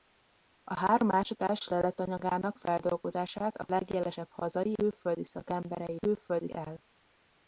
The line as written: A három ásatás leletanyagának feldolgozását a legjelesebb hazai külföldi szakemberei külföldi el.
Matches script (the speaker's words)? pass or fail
pass